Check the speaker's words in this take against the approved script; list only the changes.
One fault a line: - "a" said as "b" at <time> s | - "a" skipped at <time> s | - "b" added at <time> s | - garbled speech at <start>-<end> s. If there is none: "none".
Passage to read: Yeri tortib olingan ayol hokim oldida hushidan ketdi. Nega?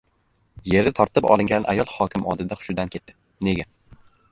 none